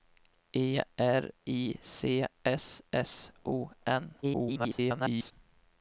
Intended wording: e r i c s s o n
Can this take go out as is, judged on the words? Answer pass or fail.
fail